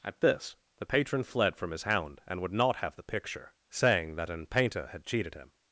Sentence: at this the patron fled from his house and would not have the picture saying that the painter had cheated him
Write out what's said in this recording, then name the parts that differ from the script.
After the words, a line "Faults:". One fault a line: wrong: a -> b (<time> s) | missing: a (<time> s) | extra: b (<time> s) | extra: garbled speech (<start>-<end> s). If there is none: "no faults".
at this the patron fled from his hound and would not have the picture saying that an painter had cheated him
Faults:
wrong: house -> hound (1.8 s)
wrong: the -> an (4.3 s)